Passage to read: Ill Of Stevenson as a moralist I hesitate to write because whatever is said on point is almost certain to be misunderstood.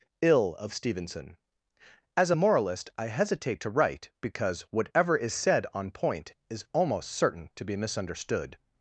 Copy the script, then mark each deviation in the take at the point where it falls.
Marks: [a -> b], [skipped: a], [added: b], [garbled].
Ill Of Stevenson as a moralist I hesitate to write because whatever is said on point is almost certain to be misunderstood.